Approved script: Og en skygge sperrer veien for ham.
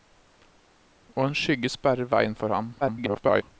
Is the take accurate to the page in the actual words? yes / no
no